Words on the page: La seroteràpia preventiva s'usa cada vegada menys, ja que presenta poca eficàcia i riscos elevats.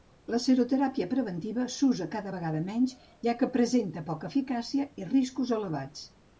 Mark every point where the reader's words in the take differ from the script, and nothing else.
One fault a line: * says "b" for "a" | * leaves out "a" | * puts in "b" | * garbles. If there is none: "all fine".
all fine